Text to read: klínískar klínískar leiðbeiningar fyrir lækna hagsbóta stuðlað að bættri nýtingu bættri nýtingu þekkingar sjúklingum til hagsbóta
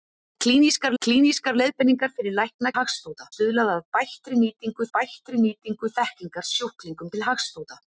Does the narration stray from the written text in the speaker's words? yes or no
no